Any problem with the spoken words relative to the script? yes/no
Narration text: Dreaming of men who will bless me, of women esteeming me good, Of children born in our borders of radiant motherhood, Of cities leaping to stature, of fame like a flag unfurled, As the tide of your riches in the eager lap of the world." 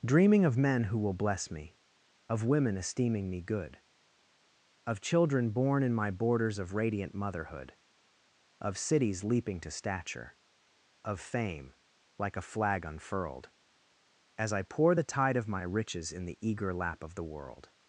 yes